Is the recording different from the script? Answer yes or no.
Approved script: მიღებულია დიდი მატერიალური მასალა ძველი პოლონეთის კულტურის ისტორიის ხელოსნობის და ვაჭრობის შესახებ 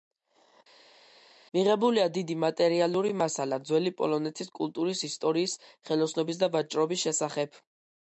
no